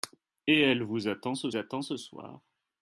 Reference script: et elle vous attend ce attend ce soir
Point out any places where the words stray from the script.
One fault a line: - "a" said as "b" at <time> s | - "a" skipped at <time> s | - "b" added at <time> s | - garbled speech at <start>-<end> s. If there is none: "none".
none